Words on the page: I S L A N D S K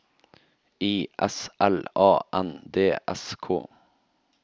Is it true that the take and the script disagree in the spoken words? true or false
false